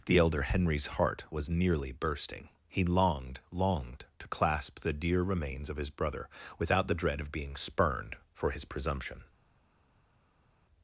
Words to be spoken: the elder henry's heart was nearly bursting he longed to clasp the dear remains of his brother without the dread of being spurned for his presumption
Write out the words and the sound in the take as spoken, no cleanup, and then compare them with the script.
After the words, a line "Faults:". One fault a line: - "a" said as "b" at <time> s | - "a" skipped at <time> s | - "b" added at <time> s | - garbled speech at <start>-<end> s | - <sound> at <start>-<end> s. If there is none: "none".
the elder henry's heart was nearly bursting he longed longed to clasp the dear remains of his brother without the dread of being spurned for his presumption
Faults:
- "longed" added at 3.5 s